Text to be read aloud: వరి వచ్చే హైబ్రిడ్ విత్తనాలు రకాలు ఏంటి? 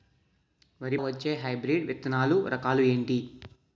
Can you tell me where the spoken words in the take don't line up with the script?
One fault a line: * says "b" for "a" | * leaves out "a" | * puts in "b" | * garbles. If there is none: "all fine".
all fine